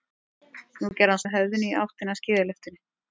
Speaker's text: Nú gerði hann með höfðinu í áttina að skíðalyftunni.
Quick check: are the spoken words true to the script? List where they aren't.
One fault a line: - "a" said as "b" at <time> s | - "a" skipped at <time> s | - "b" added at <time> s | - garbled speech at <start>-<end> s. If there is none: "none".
none